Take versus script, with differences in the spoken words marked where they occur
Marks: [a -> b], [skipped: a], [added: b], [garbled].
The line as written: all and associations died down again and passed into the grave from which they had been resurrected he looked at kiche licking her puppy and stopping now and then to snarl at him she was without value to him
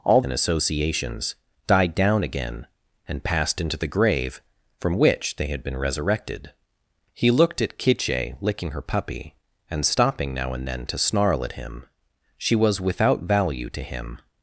all and associations died down again and passed into the grave from which they had been resurrected he looked at kiche licking her puppy and stopping now and then to snarl at him she was without value to him